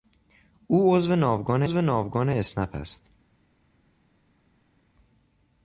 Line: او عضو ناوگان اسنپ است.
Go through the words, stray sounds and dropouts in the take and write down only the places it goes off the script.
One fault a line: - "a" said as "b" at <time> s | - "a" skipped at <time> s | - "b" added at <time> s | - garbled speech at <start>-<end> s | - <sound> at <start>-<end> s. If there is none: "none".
- "عضو ناوگان" added at 1.6 s